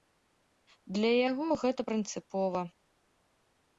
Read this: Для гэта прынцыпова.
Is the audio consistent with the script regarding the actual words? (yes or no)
no